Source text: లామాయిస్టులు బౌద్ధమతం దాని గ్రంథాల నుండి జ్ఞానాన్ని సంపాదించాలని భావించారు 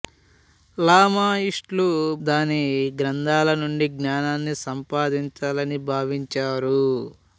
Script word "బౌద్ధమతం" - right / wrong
wrong